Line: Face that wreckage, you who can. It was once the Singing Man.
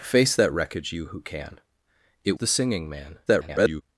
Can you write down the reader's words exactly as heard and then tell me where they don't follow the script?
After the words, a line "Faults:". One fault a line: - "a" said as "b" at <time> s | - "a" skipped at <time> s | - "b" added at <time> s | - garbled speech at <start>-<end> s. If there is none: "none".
Face that wreckage, you who can. It the Singing Man. [garbled]
Faults:
- "was once" skipped at 2.4 s
- garbled speech at 3.3-3.8 s